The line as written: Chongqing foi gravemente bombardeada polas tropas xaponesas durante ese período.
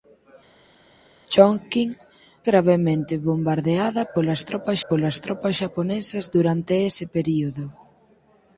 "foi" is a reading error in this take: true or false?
true